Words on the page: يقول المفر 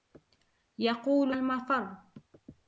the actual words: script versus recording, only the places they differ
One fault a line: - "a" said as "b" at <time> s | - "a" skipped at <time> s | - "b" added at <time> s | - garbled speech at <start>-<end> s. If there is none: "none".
none